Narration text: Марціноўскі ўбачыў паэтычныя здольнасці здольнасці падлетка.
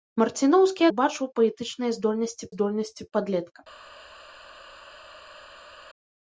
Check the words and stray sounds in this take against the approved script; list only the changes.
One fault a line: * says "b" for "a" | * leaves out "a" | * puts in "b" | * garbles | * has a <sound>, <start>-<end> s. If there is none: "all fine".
all fine